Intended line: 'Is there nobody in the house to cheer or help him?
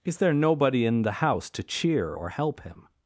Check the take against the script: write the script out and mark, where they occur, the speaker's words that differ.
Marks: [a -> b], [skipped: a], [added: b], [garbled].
'Is there nobody in the house to cheer or help him?